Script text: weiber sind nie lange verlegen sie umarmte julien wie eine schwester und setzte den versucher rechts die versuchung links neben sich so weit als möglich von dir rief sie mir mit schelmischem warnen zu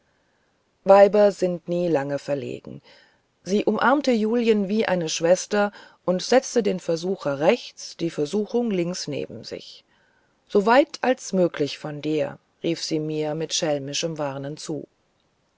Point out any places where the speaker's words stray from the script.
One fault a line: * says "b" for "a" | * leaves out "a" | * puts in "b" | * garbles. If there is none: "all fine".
all fine